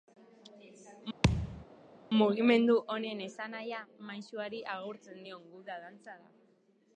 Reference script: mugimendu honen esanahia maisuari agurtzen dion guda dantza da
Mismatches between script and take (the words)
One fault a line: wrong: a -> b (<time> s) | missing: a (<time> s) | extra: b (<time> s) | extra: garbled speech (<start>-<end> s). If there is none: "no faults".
no faults